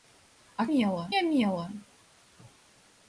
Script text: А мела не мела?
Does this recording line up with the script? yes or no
yes